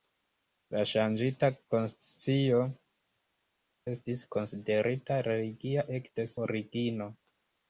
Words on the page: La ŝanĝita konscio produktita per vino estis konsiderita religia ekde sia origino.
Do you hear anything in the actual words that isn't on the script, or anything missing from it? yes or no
yes